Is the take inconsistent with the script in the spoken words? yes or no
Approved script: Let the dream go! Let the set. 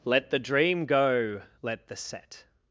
no